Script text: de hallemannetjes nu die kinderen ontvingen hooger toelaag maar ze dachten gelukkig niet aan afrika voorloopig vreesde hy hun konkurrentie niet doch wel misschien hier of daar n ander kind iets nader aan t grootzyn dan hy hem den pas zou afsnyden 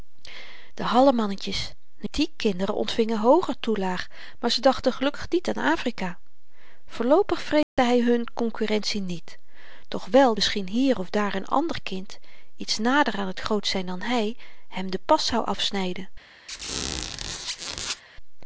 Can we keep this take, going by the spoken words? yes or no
yes